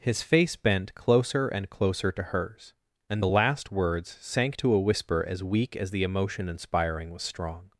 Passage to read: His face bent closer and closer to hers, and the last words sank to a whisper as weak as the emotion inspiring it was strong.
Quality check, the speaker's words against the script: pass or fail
fail